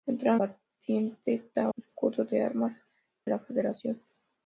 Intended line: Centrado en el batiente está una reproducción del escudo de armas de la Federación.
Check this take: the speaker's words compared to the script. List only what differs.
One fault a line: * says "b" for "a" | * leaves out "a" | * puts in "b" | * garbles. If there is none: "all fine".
* leaves out "en el"
* leaves out "una reproducción del"
* leaves out "de"